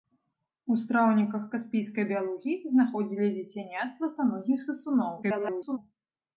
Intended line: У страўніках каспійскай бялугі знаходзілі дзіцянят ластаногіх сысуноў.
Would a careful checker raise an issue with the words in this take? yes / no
yes